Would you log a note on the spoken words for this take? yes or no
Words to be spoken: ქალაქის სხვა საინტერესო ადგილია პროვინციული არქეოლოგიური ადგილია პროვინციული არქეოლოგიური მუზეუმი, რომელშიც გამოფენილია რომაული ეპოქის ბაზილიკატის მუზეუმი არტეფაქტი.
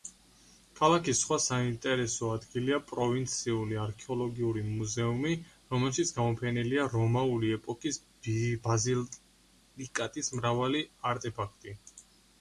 yes